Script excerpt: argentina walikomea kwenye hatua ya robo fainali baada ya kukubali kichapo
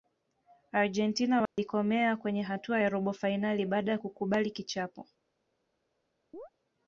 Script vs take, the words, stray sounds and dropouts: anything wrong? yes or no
yes